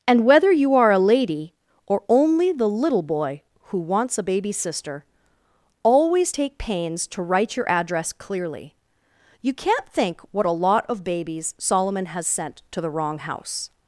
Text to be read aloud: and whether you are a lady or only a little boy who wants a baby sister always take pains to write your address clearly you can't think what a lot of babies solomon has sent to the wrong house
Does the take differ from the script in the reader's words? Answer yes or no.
yes